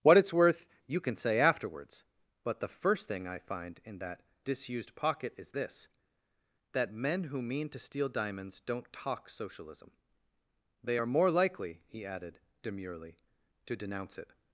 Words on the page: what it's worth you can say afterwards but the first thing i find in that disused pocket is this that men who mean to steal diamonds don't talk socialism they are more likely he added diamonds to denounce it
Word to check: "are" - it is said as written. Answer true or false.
true